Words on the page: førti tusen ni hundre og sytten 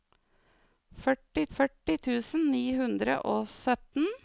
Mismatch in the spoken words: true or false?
true